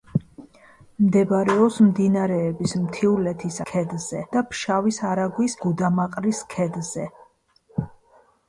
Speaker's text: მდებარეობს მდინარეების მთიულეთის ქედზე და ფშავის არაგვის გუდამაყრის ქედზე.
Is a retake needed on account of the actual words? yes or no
no